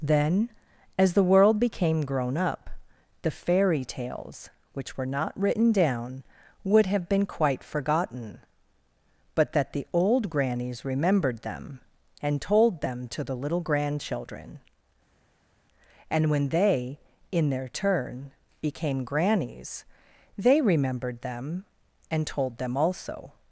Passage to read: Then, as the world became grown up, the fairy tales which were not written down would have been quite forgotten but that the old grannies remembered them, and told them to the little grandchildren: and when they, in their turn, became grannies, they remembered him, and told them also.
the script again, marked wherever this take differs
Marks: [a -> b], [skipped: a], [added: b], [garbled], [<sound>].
Then, as the world became grown up, the fairy tales which were not written down would have been quite forgotten but that the old grannies remembered them, and told them to the little grandchildren: and when they, in their turn, became grannies, they remembered [him, -> them] and told them also.